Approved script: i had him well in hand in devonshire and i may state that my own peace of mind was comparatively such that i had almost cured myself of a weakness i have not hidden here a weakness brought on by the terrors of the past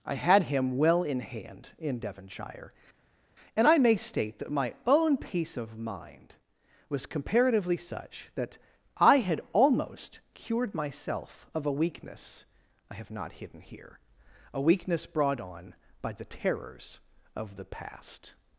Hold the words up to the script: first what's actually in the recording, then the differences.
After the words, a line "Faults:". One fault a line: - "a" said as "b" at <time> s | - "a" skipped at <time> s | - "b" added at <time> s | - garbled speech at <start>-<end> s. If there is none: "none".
i had him well in hand in devonshire and i may state that my own peace of mind was comparatively such that i had almost cured myself of a weakness i have not hidden here a weakness brought on by the terrors of the past
Faults:
none